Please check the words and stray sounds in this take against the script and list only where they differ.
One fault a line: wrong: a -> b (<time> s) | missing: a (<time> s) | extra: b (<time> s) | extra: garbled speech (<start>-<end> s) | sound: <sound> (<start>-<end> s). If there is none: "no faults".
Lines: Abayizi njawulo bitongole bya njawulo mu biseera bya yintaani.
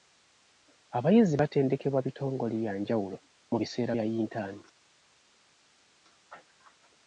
wrong: njawulo -> batendekebwa (1.4 s)